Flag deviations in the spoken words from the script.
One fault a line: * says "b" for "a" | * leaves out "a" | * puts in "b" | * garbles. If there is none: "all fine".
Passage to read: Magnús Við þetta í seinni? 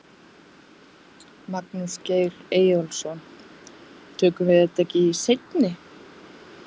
* puts in "Geir Eyjólfsson Tökum"
* puts in "ekki"